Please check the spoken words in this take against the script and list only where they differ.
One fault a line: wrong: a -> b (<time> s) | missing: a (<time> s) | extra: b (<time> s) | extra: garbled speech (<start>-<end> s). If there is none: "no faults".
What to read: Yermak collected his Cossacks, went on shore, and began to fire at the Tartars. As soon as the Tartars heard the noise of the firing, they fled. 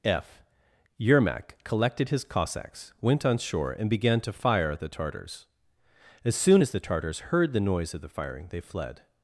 extra: f (0.0 s)